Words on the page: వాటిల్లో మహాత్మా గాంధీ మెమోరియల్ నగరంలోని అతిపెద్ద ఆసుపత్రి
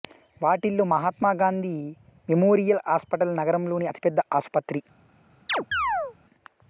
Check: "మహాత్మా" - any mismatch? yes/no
no